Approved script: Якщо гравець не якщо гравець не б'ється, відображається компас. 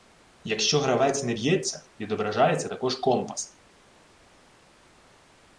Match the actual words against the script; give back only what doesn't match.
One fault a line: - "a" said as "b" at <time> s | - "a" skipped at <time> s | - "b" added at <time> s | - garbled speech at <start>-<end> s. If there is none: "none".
- "якщо гравець не" skipped at 1.3 s
- "також" added at 2.6 s